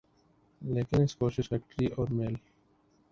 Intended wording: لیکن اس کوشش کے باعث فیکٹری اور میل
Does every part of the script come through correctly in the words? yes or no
no